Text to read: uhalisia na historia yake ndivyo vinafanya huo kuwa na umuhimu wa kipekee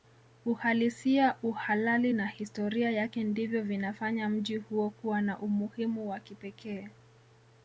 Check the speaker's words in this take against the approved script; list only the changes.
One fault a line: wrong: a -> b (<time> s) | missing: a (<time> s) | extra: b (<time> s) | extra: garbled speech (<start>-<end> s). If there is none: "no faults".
extra: uhalali (1.4 s)
extra: mji (4.3 s)